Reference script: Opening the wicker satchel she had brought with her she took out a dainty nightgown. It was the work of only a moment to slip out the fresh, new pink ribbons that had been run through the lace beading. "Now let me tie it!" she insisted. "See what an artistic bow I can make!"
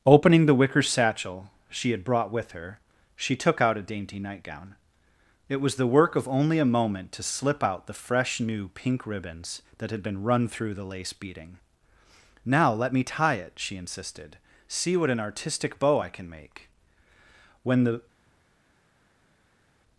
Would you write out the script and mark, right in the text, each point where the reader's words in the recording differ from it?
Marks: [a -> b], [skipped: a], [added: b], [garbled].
Opening the wicker satchel she had brought with her she took out a dainty nightgown. It was the work of only a moment to slip out the fresh, new pink ribbons that had been run through the lace beading. "Now let me tie it!" she insisted. "See what an artistic bow I can make!" [added: When the]